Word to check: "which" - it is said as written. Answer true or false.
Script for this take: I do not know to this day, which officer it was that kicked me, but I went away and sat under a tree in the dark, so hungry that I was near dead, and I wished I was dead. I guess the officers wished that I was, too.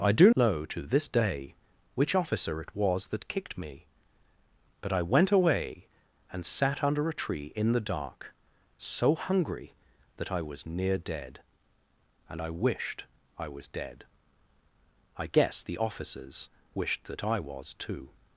true